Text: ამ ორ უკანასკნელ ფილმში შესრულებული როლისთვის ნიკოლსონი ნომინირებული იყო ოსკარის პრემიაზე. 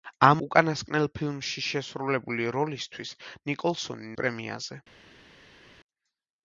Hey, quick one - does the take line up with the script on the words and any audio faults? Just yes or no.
no